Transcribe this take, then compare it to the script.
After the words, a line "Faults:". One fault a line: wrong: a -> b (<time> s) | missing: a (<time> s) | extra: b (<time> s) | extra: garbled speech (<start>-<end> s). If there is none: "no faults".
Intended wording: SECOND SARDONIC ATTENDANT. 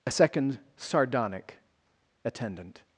a SECOND SARDONIC ATTENDANT.
Faults:
extra: a (0.1 s)